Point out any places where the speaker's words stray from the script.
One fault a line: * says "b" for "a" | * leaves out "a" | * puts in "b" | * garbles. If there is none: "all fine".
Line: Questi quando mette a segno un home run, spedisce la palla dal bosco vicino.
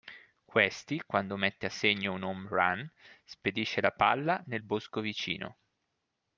* says "nel" for "dal"